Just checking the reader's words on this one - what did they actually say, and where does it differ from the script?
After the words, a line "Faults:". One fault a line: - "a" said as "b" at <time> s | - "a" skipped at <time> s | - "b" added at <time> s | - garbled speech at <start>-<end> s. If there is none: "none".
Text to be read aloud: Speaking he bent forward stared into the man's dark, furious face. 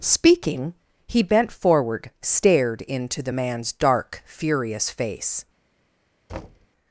Speaking he bent forward stared into the man's dark, furious face.
Faults:
none